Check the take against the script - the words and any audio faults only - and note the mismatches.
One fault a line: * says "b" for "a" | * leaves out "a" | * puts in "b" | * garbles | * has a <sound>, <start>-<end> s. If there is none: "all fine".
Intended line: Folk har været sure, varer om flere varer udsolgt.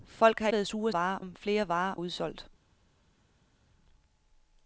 all fine